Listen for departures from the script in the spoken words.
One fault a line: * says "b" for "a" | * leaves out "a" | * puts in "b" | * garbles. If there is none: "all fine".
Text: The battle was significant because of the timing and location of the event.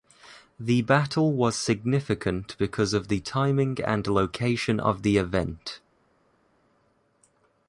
all fine